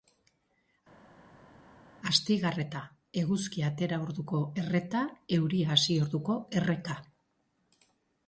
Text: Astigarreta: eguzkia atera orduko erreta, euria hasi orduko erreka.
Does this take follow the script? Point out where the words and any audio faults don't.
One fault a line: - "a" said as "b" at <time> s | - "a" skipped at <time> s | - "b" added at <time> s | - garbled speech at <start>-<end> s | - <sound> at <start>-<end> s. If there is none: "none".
none